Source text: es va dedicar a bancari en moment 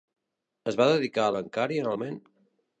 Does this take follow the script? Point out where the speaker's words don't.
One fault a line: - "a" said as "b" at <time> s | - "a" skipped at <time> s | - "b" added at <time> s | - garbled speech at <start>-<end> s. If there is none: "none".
none